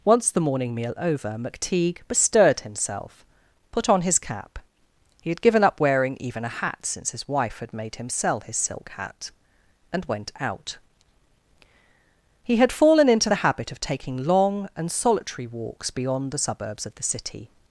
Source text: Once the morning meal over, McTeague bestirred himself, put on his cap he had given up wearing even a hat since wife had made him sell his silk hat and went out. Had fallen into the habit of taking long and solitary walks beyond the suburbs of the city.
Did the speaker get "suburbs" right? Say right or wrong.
right